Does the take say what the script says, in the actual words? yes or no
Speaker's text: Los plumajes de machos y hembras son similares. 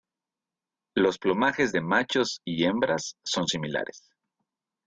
yes